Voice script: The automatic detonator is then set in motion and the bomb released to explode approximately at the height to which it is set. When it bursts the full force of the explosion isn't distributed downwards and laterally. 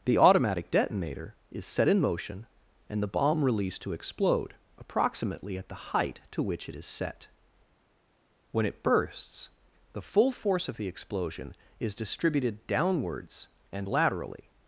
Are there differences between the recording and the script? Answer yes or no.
yes